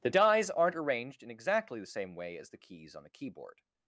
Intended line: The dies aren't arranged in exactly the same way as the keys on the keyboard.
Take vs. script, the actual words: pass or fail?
pass